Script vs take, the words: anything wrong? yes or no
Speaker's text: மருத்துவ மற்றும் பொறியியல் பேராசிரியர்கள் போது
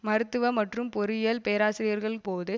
no